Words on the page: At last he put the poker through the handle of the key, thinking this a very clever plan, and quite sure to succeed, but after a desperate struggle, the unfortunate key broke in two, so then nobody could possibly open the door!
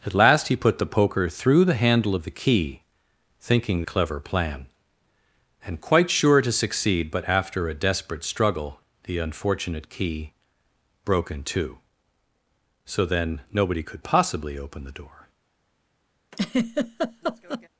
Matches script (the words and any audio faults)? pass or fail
fail